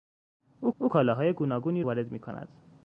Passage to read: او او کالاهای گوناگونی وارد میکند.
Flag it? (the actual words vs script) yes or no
no